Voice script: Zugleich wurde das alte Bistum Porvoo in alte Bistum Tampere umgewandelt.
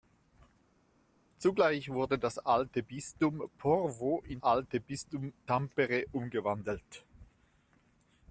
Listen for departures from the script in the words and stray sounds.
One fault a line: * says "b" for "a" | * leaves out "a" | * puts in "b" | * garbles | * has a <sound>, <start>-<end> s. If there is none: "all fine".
all fine